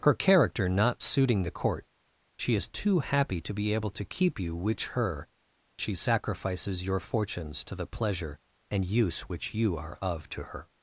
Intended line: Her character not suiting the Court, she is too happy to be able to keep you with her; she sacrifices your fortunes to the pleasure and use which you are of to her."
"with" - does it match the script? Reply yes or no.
no